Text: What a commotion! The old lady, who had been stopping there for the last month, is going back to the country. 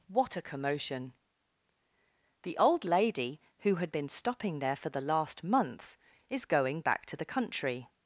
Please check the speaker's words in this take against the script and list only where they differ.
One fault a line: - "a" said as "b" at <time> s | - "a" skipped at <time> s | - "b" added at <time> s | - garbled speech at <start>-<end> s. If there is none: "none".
none